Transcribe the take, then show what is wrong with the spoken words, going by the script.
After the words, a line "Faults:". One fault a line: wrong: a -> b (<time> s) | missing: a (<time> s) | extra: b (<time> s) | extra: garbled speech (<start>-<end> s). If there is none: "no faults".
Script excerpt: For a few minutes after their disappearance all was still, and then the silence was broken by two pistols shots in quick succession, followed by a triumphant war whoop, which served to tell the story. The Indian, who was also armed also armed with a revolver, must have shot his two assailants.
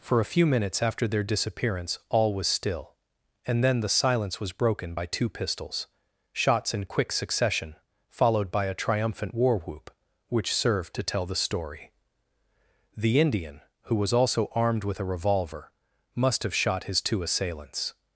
For a few minutes after their disappearance all was still, and then the silence was broken by two pistols shots in quick succession, followed by a triumphant war whoop, which served to tell the story. The Indian, who was also armed with a revolver, must have shot his two assailants.
Faults:
missing: also armed (14.8 s)